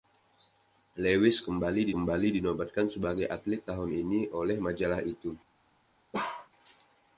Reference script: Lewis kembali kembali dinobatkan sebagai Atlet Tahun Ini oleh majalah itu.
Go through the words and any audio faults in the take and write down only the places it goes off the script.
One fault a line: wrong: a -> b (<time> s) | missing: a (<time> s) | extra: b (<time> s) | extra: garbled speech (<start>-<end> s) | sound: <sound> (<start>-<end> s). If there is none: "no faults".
sound: bark (6.1-6.5 s)